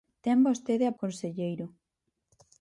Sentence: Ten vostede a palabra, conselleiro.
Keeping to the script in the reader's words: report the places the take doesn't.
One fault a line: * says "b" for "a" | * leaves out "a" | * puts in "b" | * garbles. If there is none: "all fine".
* leaves out "palabra"